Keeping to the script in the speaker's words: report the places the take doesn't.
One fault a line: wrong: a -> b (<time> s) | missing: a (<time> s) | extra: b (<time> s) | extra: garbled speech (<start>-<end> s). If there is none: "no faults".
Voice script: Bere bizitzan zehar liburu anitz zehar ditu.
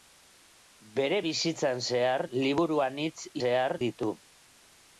no faults